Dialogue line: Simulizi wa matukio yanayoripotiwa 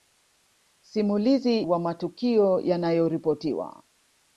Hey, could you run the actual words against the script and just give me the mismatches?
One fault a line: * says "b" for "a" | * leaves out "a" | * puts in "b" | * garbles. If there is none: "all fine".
all fine